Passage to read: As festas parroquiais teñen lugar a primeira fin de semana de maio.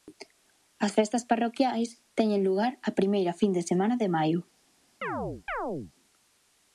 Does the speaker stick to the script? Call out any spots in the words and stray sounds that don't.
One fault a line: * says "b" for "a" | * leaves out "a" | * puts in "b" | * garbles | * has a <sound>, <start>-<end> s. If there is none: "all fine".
* has a chirp, 5.0-5.9 s